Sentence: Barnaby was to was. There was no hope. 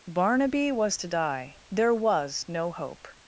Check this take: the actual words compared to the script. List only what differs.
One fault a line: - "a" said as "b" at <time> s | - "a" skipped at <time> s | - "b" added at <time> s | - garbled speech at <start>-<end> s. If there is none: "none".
- "was" said as "die" at 1.1 s